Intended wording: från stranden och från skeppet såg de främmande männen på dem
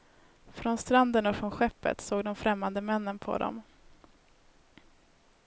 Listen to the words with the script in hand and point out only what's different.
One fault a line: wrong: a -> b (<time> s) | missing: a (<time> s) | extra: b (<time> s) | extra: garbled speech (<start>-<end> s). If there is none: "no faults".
no faults